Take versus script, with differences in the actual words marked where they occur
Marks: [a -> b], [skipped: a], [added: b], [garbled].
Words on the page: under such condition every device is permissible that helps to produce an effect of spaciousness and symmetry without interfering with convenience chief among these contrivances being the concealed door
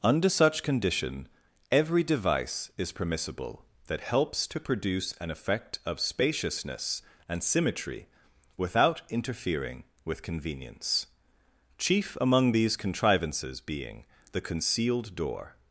under such condition every device is permissible that helps to produce an effect of spaciousness and symmetry without interfering with convenience chief among these contrivances being the concealed door